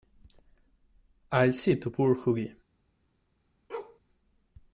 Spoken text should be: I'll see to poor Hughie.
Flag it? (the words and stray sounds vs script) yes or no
yes